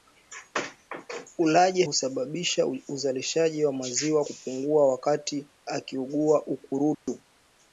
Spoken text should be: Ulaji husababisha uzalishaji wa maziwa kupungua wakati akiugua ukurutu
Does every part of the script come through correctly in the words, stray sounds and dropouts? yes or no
no